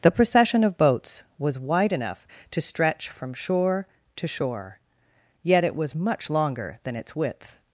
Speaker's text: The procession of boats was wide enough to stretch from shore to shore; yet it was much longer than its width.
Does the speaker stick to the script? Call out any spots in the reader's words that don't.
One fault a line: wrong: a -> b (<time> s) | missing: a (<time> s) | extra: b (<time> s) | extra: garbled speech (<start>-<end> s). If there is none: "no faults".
no faults